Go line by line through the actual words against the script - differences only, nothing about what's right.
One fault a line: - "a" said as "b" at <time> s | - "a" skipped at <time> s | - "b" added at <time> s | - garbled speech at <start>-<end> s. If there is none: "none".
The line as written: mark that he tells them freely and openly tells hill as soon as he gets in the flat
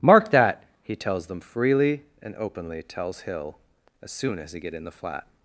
- "gets" said as "get" at 4.6 s